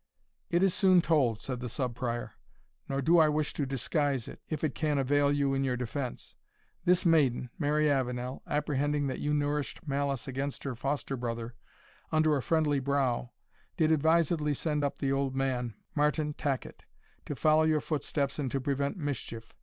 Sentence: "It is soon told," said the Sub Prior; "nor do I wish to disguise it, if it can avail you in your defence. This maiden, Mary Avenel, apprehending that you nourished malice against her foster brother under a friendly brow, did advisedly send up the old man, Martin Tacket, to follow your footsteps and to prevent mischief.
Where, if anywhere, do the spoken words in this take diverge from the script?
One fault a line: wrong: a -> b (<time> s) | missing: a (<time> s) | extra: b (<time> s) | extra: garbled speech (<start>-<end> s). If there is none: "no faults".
no faults